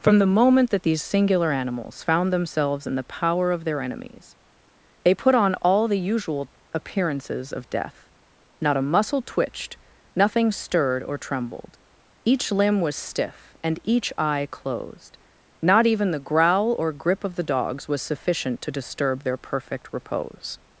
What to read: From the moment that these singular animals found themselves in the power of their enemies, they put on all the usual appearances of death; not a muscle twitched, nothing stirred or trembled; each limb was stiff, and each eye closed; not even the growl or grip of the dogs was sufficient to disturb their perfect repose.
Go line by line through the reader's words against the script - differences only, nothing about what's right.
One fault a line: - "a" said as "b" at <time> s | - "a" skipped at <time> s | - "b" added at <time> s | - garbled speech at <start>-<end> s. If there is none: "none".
none